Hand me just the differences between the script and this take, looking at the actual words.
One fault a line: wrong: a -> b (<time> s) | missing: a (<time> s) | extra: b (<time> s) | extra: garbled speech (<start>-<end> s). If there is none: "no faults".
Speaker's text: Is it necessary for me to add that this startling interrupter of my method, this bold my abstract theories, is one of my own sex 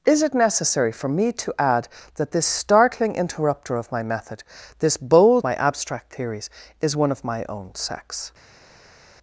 no faults